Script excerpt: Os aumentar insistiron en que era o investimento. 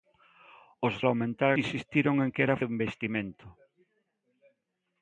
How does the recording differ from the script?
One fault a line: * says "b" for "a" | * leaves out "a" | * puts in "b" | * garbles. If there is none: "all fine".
all fine